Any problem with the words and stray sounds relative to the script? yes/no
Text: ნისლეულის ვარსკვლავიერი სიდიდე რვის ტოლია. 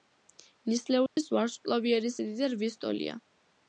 yes